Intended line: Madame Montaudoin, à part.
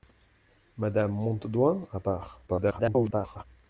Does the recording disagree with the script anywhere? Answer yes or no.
yes